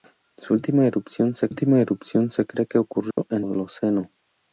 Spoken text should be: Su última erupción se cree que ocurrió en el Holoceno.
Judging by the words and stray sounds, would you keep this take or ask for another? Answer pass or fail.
fail